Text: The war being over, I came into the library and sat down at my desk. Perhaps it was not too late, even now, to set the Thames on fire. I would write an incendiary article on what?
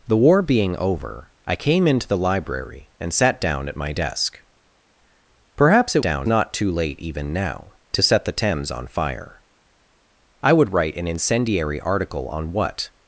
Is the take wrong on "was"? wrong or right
wrong